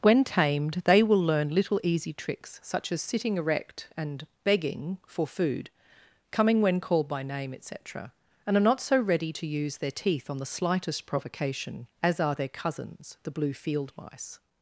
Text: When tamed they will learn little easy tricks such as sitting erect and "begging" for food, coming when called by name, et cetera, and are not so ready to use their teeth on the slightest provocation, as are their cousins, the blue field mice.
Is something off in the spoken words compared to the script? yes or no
no